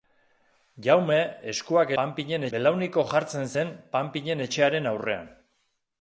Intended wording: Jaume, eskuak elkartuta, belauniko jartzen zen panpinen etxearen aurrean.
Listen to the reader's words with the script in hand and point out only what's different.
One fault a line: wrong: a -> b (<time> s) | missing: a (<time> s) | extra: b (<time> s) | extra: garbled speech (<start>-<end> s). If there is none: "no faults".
wrong: elkartuta -> panpinen (2.0 s)